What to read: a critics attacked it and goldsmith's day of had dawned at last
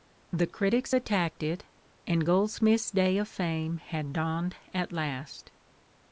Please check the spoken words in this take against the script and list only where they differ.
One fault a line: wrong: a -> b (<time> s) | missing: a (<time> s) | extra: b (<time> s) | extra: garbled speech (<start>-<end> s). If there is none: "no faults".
wrong: a -> the (0.3 s)
extra: fame (3.3 s)